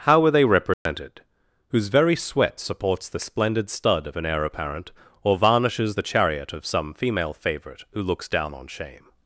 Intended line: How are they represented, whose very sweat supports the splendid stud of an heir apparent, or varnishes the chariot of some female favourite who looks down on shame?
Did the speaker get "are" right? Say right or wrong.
wrong